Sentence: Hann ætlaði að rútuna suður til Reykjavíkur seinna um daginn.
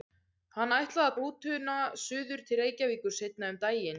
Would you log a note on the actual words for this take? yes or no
no